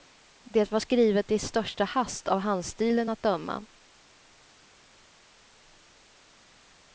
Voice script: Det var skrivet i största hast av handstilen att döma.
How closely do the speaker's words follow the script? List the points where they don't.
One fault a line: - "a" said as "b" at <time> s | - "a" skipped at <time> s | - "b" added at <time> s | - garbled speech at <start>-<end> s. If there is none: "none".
none